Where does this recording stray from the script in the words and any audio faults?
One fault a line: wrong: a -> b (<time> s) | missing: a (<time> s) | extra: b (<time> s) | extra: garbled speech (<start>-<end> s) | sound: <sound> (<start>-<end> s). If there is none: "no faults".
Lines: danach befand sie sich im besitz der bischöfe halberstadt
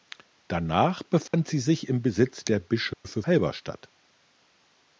sound: dropout (1.3-1.3 s)
sound: dropout (2.9-3.0 s)